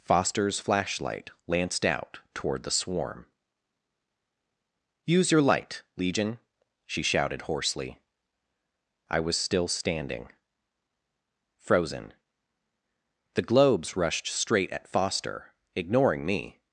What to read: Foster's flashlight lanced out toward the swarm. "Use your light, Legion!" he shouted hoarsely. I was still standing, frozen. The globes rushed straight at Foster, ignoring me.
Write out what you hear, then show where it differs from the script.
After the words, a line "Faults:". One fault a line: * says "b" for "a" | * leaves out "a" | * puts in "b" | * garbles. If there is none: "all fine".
Foster's flashlight lanced out toward the swarm. "Use your light, Legion!" she shouted hoarsely. I was still standing, frozen. The globes rushed straight at Foster, ignoring me.
Faults:
* says "she" for "he"